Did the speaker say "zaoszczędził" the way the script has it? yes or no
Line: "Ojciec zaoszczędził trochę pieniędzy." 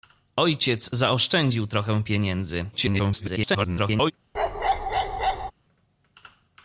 yes